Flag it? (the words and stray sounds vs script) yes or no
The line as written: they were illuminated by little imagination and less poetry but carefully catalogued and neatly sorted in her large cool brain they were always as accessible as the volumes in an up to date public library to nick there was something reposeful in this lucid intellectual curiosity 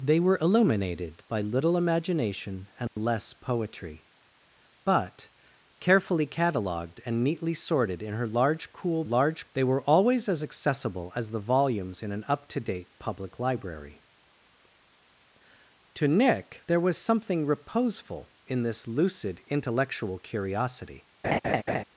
yes